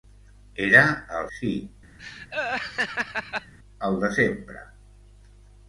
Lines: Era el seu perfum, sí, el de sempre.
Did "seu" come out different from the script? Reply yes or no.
yes